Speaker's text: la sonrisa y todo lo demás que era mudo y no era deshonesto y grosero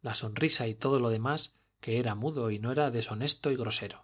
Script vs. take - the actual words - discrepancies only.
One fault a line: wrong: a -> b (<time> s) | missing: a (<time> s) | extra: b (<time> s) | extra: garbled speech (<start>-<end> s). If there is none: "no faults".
no faults